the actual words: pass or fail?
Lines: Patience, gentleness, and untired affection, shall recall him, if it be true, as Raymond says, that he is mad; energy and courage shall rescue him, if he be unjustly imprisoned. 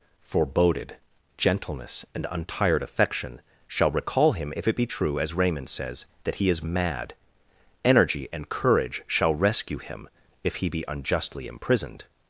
fail